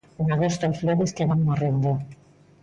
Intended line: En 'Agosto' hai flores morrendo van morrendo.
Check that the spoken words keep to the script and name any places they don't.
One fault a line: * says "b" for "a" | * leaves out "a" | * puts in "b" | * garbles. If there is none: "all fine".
* says "que" for "morrendo"